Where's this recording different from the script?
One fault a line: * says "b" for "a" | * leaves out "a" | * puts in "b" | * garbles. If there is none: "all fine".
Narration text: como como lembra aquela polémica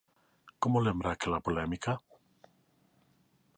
* leaves out "como"